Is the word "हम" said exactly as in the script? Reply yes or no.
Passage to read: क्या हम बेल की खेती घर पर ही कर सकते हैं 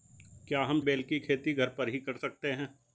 yes